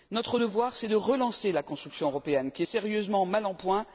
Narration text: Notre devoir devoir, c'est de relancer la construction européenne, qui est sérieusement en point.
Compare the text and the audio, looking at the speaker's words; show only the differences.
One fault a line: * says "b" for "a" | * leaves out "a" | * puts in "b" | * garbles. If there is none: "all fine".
* leaves out "devoir"
* puts in "mal"